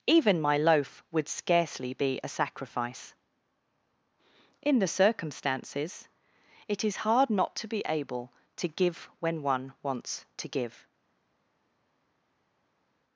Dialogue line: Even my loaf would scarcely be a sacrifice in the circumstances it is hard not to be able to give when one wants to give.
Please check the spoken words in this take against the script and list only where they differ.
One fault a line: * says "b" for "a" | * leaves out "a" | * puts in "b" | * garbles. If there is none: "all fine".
all fine